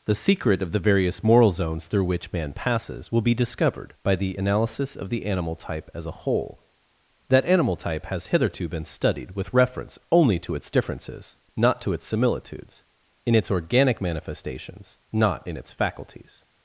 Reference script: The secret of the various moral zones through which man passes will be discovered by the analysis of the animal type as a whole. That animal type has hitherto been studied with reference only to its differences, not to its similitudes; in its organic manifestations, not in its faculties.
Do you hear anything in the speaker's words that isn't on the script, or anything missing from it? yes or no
no